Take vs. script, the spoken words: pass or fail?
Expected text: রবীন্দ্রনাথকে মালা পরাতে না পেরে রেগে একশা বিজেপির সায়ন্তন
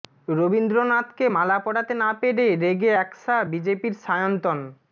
pass